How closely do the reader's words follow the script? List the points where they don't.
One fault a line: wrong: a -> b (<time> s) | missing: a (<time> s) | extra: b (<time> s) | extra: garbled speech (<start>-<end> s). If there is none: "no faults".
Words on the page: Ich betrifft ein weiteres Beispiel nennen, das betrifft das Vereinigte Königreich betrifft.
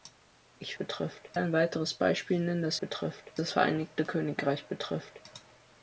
no faults